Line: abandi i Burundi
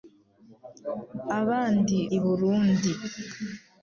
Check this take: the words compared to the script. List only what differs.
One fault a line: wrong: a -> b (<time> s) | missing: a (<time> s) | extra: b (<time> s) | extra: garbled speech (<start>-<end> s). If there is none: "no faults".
no faults